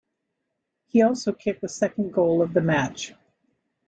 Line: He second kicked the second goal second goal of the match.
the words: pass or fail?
fail